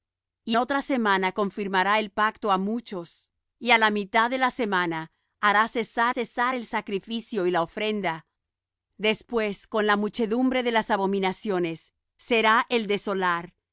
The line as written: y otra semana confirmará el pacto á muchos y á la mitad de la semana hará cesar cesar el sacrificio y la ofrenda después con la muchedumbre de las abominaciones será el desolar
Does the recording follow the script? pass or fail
pass